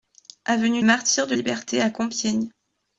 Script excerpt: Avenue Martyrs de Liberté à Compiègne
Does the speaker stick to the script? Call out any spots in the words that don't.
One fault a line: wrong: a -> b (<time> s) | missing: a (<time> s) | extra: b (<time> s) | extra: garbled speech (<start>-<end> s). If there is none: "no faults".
no faults